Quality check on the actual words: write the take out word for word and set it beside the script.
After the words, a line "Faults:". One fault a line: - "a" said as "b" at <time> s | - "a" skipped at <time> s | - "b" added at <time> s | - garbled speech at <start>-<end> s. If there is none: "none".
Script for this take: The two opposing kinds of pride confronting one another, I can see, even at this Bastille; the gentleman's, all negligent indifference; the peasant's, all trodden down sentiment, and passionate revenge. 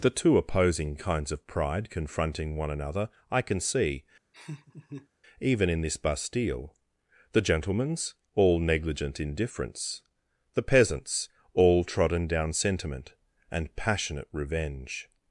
The two opposing kinds of pride confronting one another, I can see, even in this Bastille; the gentleman's, all negligent indifference; the peasant's, all trodden down sentiment, and passionate revenge.
Faults:
- "at" said as "in" at 5.7 s